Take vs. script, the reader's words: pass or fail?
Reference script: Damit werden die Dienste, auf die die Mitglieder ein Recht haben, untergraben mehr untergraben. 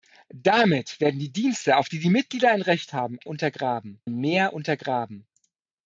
pass